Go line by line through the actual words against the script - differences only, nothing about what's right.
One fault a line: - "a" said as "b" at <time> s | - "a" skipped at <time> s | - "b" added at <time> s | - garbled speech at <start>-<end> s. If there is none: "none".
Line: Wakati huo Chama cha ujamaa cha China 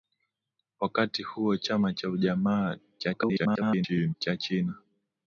- garbled speech at 3.0-4.1 s